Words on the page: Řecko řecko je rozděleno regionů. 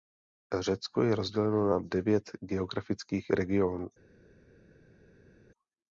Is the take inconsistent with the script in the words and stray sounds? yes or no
yes